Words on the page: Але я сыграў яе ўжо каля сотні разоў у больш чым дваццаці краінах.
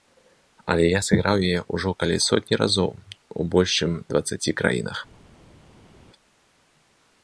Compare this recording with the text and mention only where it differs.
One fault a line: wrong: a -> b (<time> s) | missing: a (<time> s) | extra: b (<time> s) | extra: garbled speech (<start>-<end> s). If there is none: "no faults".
no faults